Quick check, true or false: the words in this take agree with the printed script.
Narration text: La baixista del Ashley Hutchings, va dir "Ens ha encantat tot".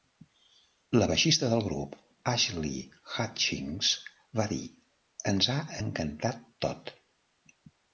false